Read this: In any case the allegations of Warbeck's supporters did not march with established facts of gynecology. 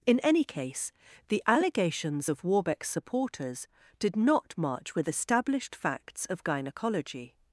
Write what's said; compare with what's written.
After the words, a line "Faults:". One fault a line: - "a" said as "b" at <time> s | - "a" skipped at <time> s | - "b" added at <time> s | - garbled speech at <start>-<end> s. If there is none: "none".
In any case the allegations of Warbeck's supporters did not march with established facts of gynecology.
Faults:
none